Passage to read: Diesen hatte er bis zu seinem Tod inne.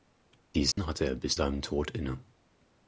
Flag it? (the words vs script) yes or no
yes